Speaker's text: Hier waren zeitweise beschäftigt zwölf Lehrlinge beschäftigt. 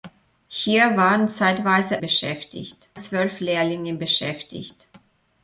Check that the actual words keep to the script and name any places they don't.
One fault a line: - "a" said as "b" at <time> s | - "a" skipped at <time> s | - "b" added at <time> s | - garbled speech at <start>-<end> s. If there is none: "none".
none